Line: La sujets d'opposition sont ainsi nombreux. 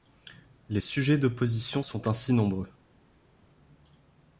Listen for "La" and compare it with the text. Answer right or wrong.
wrong